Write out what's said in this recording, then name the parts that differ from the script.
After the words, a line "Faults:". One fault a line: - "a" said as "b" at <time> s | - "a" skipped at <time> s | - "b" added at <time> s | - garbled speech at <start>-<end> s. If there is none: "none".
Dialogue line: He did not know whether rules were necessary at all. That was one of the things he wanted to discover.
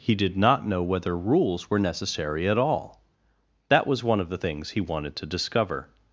He did not know whether rules were necessary at all. That was one of the things he wanted to discover.
Faults:
none